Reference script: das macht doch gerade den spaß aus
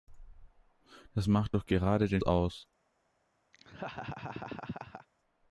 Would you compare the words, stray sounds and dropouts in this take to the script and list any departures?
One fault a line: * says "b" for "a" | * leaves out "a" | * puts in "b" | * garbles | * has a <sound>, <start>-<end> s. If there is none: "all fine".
* leaves out "spaß"
* has a laugh, 3.5-5.1 s